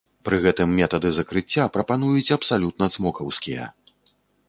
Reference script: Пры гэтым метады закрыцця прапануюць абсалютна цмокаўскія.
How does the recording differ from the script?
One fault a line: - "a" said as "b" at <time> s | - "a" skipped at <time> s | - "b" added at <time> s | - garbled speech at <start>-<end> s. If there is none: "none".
none